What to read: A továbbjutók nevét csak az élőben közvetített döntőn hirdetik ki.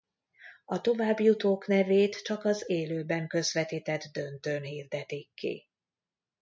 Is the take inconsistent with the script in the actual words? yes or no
no